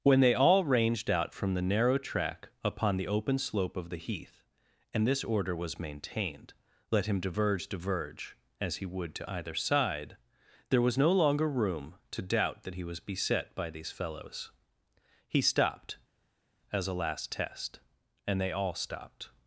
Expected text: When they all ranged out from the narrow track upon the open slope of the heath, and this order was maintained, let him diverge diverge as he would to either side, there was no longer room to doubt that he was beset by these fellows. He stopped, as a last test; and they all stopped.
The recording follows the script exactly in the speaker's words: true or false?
true